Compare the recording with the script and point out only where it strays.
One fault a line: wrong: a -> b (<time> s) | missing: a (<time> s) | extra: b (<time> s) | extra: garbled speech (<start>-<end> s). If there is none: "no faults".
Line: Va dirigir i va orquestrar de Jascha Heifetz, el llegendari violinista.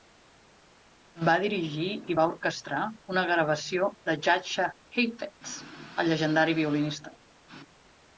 extra: una gravació (3.1 s)